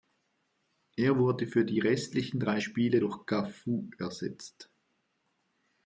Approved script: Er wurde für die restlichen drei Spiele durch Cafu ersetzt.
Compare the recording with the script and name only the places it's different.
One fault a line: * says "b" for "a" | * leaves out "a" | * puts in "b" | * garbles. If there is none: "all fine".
all fine